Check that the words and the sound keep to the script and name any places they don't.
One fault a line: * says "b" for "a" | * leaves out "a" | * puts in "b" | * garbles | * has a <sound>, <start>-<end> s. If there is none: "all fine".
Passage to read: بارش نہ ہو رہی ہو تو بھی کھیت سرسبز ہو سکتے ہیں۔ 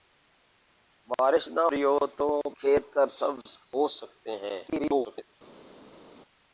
* leaves out "ہو"
* leaves out "بھی"
* garbles